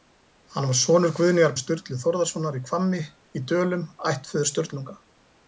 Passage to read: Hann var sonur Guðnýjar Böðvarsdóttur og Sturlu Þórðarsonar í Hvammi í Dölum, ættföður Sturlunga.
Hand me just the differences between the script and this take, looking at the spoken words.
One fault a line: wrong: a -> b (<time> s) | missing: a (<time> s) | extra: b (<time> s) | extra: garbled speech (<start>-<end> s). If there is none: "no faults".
missing: Böðvarsdóttur (1.5 s)